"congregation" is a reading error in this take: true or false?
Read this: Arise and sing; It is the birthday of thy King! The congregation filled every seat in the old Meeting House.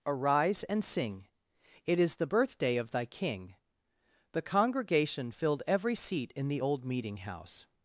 false